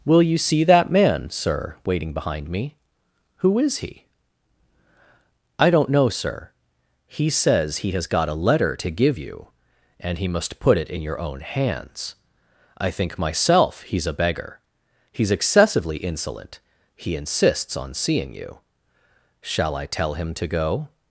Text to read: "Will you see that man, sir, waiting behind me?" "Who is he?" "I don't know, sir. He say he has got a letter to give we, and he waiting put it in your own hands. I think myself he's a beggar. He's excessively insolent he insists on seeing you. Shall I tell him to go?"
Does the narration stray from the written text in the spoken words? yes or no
yes